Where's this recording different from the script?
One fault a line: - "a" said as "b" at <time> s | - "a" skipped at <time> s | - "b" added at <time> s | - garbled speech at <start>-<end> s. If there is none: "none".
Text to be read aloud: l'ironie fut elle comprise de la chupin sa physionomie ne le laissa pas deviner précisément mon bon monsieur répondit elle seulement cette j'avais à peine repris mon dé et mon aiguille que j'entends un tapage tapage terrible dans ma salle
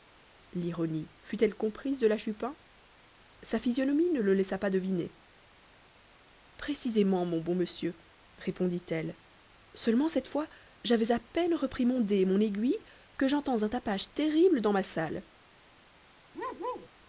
- "fois" added at 10.3 s
- "tapage" skipped at 14.1 s